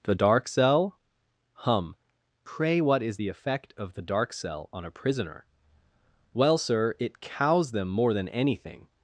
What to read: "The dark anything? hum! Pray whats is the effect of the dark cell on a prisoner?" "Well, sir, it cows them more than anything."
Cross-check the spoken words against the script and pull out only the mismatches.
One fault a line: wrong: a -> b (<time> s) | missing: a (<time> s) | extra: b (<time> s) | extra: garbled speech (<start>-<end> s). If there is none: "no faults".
wrong: anything -> cell (0.5 s)
wrong: whats -> what (2.8 s)